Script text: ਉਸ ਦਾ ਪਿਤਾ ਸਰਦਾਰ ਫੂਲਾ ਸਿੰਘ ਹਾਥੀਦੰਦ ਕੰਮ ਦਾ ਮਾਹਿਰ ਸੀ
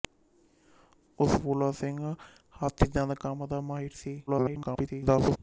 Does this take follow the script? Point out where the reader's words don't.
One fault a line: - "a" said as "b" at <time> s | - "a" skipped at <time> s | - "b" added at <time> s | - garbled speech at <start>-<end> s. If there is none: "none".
- "ਦਾ ਪਿਤਾ ਸਰਦਾਰ" skipped at 1.4 s
- garbled speech at 4.3-5.4 s